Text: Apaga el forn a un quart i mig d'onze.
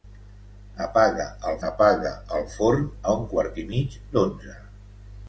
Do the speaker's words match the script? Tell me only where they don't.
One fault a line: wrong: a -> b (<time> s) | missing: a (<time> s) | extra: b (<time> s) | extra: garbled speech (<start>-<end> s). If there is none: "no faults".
extra: apaga el (1.7 s)